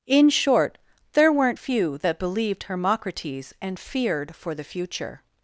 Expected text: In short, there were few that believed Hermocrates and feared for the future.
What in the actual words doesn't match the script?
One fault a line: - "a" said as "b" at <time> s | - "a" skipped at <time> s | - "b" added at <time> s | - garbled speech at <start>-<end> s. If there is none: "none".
- "were" said as "weren't" at 1.3 s